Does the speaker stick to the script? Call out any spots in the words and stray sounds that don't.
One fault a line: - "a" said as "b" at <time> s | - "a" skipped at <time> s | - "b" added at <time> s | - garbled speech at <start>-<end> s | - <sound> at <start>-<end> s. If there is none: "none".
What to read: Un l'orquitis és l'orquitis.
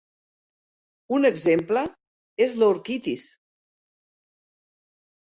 - "l'orquitis" said as "exemple" at 1.3 s